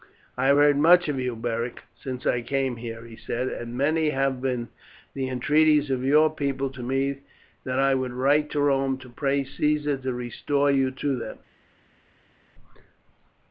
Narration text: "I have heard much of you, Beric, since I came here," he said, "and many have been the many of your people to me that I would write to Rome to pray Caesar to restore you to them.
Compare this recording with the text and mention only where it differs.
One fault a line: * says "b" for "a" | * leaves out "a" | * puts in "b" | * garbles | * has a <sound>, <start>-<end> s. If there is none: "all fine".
* says "entreaties" for "many"